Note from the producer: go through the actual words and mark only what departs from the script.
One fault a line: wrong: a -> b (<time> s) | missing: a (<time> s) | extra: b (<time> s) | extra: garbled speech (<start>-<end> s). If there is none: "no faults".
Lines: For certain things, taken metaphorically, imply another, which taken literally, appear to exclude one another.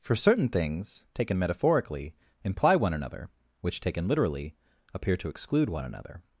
extra: one (2.8 s)